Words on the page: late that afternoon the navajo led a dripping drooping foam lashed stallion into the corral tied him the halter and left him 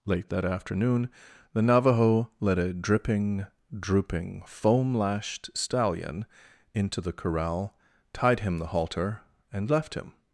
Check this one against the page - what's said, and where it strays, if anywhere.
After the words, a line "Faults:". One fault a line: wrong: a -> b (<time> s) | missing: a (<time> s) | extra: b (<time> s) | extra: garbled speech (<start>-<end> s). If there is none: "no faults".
late that afternoon the navajo led a dripping drooping foam lashed stallion into the corral tied him the halter and left him
Faults:
no faults